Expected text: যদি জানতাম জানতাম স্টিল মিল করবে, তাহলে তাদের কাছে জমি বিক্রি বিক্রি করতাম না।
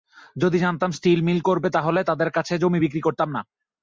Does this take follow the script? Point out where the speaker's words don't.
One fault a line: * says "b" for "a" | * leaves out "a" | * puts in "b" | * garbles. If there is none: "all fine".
* leaves out "জানতাম"
* leaves out "বিক্রি"